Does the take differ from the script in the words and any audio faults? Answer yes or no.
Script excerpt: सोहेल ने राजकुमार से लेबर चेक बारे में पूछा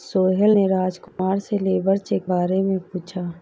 yes